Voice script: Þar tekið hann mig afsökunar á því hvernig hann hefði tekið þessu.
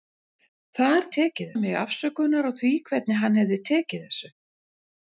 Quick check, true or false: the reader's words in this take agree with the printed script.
true